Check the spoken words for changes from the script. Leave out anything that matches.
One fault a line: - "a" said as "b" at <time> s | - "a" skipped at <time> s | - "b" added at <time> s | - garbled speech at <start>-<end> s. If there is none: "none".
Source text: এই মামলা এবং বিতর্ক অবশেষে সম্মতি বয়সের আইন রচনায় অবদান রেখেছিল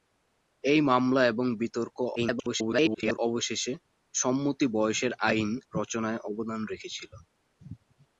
- garbled speech at 2.2-3.2 s